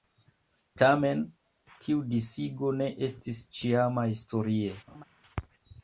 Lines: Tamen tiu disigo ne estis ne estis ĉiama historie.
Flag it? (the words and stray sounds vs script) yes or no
yes